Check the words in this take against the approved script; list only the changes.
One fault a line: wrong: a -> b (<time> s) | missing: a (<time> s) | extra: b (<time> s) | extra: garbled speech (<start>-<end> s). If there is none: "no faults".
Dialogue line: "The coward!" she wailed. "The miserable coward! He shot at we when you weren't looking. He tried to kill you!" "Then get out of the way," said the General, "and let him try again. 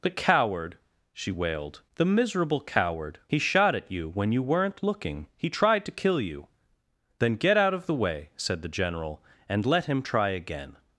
wrong: we -> you (3.9 s)